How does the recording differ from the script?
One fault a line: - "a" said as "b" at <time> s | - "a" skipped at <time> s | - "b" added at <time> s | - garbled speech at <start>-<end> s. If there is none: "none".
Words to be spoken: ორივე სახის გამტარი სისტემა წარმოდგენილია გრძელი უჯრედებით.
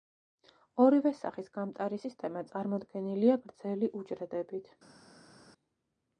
none